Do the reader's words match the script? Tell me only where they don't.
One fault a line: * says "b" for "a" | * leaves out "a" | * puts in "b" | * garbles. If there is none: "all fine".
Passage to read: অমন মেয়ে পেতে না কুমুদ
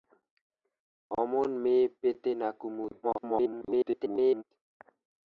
* garbles